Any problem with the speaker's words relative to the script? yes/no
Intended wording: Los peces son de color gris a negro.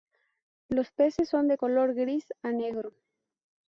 no